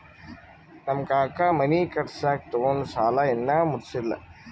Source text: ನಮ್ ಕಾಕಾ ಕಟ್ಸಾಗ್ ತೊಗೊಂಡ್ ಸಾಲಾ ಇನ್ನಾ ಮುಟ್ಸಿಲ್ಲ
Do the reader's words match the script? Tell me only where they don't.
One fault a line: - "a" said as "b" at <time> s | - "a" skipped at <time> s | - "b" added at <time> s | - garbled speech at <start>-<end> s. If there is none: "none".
- "ಮನಿ" added at 1.5 s